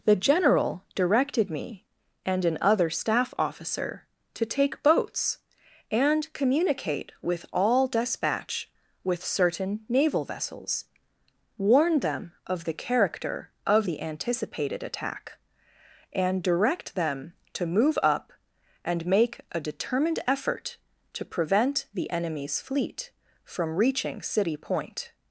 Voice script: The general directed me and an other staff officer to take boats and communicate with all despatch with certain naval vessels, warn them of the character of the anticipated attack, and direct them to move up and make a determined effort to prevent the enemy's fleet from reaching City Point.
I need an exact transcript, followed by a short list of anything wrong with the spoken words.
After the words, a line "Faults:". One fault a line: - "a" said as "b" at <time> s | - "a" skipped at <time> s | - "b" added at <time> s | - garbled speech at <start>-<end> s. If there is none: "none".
The general directed me and an other staff officer to take boats and communicate with all despatch with certain naval vessels, warn them of the character of the anticipated attack, and direct them to move up and make a determined effort to prevent the enemy's fleet from reaching City Point.
Faults:
none